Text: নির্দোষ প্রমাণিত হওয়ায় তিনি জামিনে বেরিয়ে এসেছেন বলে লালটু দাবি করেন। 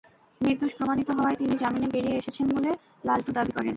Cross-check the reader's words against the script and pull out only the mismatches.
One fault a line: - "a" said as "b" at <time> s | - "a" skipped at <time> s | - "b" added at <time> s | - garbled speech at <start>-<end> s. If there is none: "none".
none